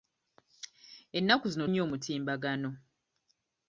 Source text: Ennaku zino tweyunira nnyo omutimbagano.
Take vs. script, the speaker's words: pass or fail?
fail